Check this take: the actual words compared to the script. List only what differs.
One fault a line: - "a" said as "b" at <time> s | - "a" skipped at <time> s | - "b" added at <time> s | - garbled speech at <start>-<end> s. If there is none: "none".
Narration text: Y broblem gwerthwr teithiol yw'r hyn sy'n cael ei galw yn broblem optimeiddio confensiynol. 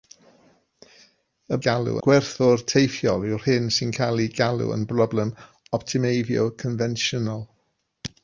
- "broblem" said as "galw" at 1.7 s